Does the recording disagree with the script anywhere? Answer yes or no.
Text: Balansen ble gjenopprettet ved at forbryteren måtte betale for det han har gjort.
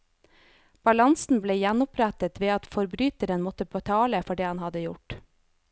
yes